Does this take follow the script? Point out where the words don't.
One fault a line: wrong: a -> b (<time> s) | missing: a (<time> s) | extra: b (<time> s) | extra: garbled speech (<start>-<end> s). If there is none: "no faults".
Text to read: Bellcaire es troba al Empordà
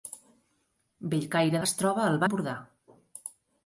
no faults